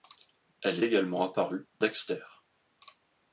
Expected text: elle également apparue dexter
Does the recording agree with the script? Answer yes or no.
yes